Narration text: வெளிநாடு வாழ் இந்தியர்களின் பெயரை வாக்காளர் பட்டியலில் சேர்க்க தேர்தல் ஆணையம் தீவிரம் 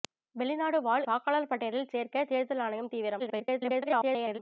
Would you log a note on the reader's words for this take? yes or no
yes